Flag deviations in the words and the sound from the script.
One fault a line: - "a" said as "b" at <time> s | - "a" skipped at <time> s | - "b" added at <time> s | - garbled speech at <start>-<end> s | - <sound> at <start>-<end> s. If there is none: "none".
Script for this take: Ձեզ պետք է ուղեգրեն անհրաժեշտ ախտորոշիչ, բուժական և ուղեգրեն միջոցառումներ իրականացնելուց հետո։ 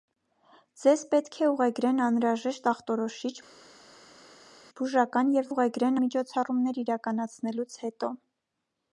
none